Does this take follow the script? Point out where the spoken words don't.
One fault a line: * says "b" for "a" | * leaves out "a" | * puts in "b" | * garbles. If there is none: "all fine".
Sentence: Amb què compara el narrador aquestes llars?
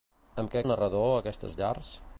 * leaves out "compara"